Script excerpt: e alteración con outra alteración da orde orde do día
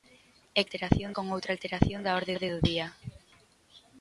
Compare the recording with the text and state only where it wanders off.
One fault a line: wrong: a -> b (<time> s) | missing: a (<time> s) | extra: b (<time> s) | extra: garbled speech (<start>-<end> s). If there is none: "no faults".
no faults